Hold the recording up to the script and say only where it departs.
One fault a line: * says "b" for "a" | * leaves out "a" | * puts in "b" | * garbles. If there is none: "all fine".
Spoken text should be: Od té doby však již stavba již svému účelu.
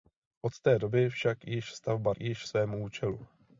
all fine